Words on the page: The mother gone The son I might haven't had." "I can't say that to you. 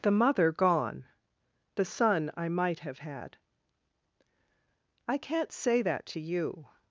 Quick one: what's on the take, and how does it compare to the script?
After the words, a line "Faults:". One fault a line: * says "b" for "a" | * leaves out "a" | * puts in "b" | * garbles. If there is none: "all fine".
The mother gone The son I might have had." "I can't say that to you.
Faults:
* says "have" for "haven't"